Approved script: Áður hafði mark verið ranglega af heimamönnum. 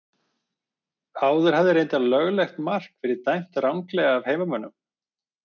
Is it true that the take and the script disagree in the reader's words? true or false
true